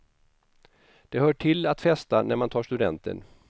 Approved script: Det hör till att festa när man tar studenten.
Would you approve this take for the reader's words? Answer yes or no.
yes